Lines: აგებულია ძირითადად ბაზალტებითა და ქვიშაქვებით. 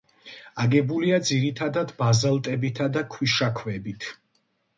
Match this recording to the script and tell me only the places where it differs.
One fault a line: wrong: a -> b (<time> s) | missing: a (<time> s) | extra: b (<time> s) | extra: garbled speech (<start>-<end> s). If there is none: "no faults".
no faults